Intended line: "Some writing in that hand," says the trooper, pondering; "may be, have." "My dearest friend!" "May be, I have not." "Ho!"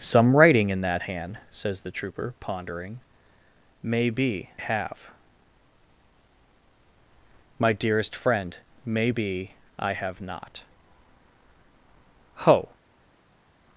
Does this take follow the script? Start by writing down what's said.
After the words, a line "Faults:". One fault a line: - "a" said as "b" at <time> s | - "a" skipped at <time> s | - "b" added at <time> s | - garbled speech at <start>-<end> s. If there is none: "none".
"Some writing in that hand," says the trooper, pondering; "may be, have." "My dearest friend!" "May be, I have not." "Ho!"
Faults:
none